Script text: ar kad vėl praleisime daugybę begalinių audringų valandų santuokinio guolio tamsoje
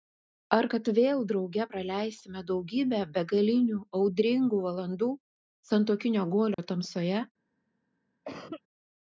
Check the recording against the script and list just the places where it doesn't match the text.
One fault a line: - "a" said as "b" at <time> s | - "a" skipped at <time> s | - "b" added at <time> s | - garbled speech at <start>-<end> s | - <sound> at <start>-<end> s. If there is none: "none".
- "drauge" added at 1.3 s
- dropout at 6.5-6.6 s
- cough at 8.2-8.6 s